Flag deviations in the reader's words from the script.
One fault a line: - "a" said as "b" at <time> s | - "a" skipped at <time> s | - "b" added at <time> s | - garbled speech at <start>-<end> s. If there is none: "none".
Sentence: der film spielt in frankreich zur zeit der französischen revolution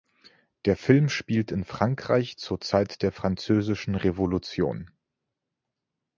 none